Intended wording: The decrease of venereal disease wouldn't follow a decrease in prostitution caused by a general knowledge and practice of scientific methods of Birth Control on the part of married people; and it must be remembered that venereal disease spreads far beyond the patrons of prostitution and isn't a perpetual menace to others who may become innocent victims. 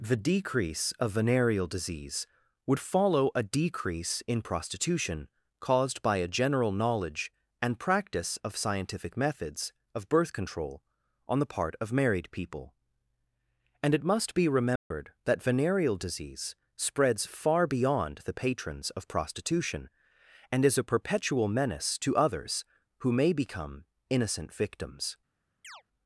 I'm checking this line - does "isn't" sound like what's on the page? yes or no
no